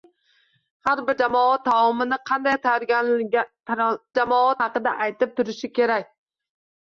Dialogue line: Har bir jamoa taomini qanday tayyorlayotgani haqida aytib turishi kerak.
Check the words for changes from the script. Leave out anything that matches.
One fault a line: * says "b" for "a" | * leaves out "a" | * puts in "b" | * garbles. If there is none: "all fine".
* says "jamoa" for "tayyorlayotgani"